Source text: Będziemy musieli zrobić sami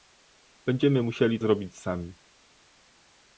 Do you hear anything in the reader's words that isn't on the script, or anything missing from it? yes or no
no